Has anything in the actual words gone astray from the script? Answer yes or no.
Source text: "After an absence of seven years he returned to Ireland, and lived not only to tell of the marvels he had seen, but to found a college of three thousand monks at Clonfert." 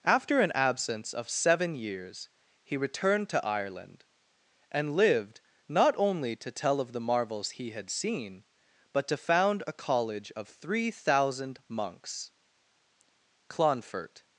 yes